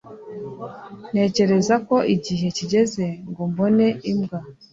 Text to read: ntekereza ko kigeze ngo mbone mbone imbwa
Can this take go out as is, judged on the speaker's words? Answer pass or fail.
fail